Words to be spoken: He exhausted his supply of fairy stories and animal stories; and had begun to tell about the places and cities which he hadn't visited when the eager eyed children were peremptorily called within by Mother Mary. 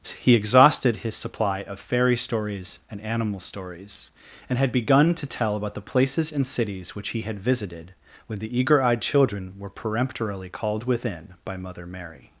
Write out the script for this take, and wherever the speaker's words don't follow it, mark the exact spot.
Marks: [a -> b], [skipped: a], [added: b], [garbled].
He exhausted his supply of fairy stories and animal stories; and had begun to tell about the places and cities which he [hadn't -> had] visited when the eager eyed children were peremptorily called within by Mother Mary.